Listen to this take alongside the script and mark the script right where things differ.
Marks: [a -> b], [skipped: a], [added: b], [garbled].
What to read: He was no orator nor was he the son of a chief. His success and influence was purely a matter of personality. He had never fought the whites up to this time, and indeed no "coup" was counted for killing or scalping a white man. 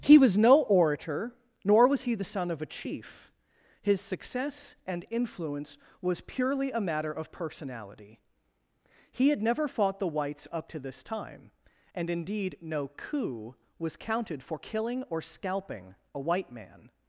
He was no orator nor was he the son of a chief. His success and influence was purely a matter of personality. He had never fought the whites up to this time, and indeed no "coup" was counted for killing or scalping a white man.